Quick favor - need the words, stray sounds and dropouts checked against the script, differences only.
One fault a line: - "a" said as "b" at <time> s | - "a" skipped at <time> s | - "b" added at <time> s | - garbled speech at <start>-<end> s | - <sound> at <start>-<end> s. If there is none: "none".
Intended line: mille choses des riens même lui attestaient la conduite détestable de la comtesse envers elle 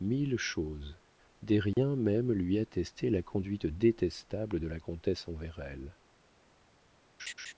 - dropout at 1.7-1.8 s
- laugh at 7.2-7.5 s